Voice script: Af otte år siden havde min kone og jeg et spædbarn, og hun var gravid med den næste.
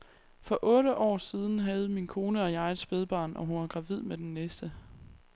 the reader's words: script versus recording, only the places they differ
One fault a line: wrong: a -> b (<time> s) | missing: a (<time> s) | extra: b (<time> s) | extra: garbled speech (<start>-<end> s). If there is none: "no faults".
wrong: Af -> For (0.4 s)